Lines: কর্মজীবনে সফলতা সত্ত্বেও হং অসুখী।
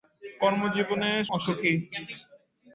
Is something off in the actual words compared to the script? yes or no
yes